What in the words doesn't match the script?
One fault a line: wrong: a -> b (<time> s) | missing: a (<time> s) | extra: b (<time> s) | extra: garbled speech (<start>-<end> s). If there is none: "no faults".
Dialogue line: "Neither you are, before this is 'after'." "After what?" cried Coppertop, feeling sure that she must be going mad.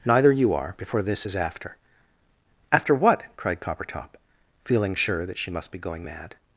no faults